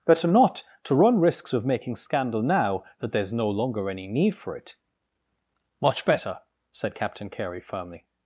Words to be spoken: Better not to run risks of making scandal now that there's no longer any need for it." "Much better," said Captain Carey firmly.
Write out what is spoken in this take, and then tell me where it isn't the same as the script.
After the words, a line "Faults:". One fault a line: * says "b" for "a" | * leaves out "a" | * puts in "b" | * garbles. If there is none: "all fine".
Better not to run risks of making scandal now that there's no longer any need for it." "Much better," said Captain Carey firmly.
Faults:
all fine